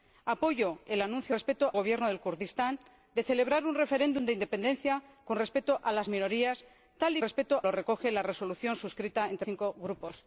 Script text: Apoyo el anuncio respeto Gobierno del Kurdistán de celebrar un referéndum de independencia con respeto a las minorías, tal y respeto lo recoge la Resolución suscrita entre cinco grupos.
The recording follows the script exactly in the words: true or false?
true